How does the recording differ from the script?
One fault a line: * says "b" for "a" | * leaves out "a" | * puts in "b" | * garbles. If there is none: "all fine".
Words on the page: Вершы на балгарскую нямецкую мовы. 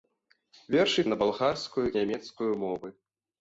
all fine